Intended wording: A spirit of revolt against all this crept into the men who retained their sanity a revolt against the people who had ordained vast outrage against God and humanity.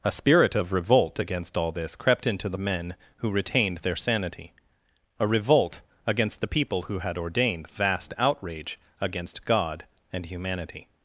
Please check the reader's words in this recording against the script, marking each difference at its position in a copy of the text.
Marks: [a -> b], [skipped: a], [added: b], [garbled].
A spirit of revolt against all this crept into the men who retained their sanity a revolt against the people who had ordained vast outrage against God and humanity.